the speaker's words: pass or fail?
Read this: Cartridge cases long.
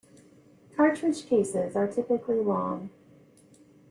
fail